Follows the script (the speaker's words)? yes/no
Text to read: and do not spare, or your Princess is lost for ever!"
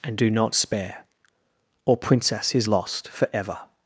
no